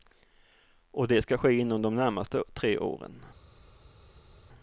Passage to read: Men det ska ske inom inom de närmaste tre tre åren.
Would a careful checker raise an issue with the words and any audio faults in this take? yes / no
yes